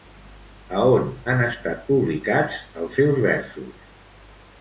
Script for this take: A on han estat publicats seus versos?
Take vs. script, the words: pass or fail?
fail